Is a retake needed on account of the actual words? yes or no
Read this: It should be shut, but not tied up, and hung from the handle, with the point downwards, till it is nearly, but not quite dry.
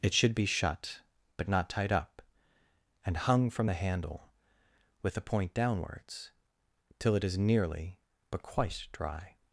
yes